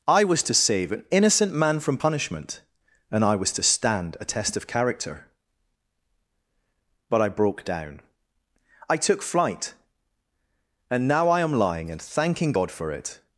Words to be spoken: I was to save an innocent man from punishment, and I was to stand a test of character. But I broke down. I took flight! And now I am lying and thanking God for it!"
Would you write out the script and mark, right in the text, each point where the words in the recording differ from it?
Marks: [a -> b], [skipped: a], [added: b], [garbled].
I was to save an innocent man from punishment, and I was to stand a test of character. But I broke down. I took flight! And now I am lying and thanking God for it!"